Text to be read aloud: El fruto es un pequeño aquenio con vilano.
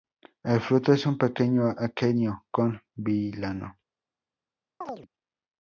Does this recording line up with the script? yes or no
yes